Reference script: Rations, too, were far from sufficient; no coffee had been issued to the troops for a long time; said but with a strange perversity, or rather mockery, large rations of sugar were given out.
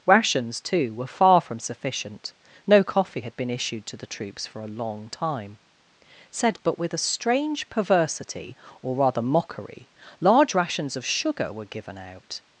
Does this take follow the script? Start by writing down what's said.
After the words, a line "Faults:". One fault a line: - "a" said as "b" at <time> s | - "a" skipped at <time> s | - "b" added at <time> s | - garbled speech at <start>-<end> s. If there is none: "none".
Rations, too, were far from sufficient; no coffee had been issued to the troops for a long time; said but with a strange perversity, or rather mockery, large rations of sugar were given out.
Faults:
none